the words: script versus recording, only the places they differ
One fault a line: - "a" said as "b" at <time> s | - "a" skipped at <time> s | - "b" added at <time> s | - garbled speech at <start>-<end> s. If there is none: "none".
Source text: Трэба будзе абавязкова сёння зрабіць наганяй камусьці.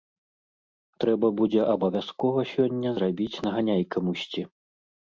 none